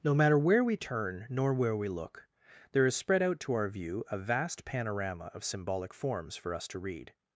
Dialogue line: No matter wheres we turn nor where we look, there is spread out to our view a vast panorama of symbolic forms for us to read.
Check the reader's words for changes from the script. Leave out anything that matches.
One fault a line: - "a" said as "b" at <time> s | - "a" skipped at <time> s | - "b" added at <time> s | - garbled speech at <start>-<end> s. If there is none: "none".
- "wheres" said as "where" at 0.4 s